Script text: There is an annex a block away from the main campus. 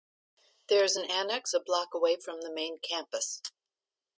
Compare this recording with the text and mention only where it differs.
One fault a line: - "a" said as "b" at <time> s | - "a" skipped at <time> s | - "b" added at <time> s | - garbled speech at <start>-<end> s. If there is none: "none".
none